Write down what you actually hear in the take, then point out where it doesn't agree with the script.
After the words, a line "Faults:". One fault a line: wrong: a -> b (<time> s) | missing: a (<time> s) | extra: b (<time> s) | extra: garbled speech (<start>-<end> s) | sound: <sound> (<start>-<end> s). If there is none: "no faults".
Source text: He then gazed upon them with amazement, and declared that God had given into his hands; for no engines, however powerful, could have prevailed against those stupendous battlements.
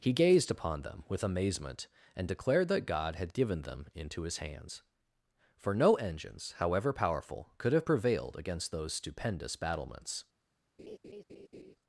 He gazed upon them with amazement, and declared that God had given them into his hands; for no engines, however powerful, could have prevailed against those stupendous battlements.
Faults:
missing: then (0.1 s)
extra: them (3.6 s)
sound: laugh (10.8-11.8 s)